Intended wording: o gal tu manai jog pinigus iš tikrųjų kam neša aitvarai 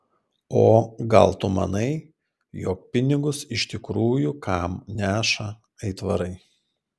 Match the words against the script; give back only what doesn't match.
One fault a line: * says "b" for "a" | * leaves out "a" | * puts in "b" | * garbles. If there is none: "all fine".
all fine